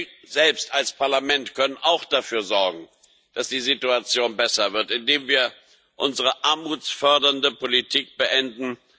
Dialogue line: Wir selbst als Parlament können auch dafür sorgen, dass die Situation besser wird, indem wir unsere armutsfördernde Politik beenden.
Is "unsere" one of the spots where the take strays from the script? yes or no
no